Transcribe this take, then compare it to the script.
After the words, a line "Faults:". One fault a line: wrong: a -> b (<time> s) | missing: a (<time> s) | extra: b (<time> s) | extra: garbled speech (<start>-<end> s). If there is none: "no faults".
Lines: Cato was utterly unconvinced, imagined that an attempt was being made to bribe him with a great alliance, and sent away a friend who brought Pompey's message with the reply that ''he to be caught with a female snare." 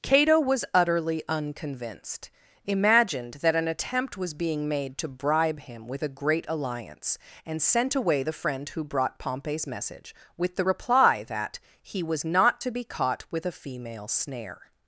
Cato was utterly unconvinced, imagined that an attempt was being made to bribe him with a great alliance, and sent away the friend who brought Pompey's message with the reply that ''he was not to be caught with a female snare."
Faults:
wrong: a -> the (8.2 s)
extra: was not (12.0 s)